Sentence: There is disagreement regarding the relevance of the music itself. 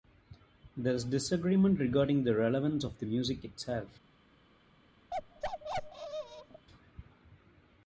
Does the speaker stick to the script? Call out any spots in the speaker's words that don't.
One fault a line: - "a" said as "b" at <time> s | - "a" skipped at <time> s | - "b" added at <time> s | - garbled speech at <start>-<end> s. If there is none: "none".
none